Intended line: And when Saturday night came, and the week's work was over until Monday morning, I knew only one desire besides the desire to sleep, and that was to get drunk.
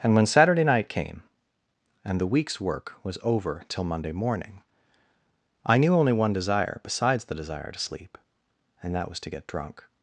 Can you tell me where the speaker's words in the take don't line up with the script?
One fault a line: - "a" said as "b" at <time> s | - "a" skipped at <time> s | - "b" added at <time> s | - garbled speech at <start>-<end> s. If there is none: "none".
- "until" said as "till" at 3.7 s